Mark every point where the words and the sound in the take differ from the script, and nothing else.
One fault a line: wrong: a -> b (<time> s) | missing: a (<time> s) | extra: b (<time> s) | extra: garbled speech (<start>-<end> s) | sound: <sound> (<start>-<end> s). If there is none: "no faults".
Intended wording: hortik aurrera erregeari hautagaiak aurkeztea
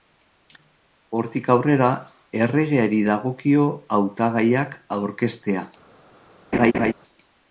extra: dagokio (3.1 s)
sound: laugh (6.5-6.9 s)